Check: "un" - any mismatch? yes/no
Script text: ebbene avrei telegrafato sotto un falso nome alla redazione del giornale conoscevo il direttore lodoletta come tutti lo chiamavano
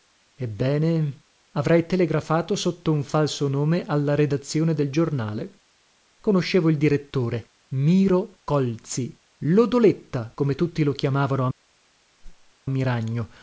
no